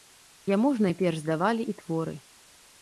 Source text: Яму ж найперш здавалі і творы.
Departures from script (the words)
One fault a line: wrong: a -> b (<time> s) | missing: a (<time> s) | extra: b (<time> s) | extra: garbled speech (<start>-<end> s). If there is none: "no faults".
no faults